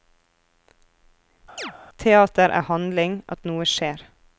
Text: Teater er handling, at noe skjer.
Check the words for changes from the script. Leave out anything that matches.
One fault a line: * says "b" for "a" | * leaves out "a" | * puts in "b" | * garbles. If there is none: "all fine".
all fine